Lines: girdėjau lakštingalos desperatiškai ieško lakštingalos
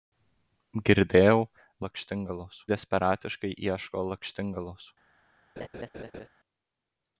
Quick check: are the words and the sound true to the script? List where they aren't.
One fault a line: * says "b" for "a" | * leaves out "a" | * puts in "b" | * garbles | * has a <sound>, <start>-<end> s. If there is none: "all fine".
* has a laugh, 5.6-6.3 s